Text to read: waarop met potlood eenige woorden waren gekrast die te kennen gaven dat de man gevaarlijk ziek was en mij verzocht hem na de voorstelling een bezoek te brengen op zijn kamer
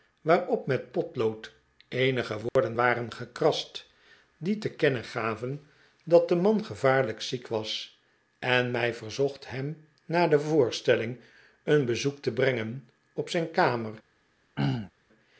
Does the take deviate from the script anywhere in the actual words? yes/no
no